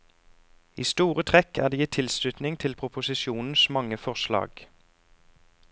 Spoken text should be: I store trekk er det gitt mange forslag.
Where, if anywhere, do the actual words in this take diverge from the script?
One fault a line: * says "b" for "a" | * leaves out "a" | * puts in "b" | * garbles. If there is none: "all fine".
* puts in "tilslutning til proposisjonens"